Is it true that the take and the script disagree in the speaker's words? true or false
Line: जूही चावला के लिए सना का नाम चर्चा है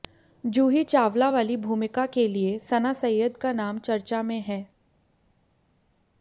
true